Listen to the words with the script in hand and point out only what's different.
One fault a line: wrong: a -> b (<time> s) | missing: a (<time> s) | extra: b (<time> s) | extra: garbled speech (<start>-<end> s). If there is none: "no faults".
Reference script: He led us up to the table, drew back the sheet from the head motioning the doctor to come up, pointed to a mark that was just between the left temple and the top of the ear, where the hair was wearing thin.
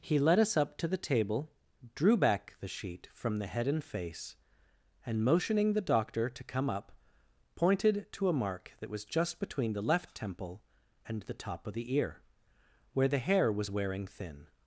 extra: and face and (3.7 s)